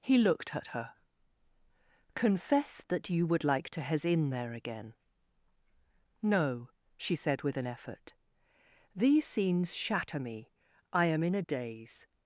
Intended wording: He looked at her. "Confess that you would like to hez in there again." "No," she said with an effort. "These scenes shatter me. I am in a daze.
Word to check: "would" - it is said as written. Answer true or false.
true